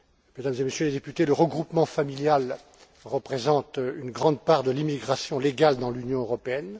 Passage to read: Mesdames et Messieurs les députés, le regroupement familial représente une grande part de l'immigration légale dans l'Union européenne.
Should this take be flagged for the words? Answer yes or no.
no